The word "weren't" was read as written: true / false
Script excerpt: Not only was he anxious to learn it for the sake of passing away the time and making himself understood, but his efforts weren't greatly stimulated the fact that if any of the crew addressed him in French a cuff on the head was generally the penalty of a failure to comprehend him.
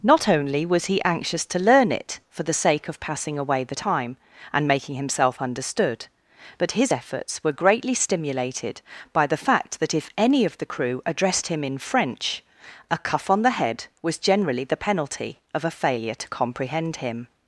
false